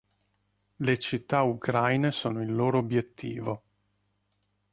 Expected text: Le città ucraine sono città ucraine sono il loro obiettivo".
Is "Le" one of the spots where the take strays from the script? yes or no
no